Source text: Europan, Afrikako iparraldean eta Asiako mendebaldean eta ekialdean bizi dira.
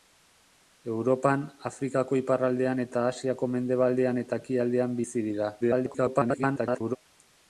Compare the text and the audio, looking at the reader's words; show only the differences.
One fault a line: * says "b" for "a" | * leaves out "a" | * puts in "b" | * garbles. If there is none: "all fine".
* garbles